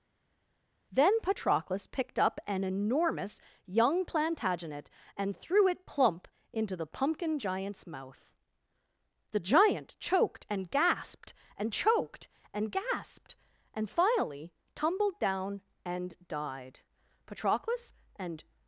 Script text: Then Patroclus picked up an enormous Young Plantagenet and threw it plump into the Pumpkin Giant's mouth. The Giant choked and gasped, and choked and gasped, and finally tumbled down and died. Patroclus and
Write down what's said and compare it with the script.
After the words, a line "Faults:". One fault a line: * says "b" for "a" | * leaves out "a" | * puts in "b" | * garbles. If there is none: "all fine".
Then Patroclus picked up an enormous Young Plantagenet and threw it plump into the Pumpkin Giant's mouth. The Giant choked and gasped, and choked and gasped, and finally tumbled down and died. Patroclus and
Faults:
all fine